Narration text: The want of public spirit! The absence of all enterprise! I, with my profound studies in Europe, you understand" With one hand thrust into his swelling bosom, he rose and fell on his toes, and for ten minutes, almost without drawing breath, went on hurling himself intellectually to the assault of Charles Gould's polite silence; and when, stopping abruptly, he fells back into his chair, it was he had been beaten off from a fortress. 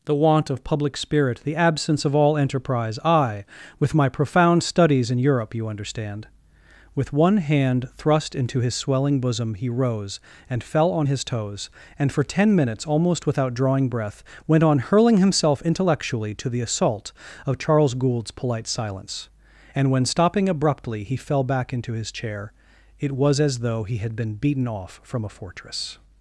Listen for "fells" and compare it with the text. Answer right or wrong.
wrong